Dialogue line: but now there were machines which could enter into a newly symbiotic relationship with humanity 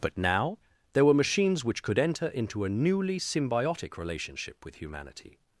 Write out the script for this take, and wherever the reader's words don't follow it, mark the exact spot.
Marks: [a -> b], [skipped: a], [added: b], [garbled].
but now there were machines which could enter into a newly symbiotic relationship with humanity